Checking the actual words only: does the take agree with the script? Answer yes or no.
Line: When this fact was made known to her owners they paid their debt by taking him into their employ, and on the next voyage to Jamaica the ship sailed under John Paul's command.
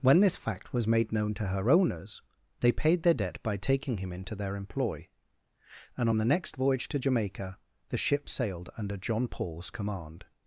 yes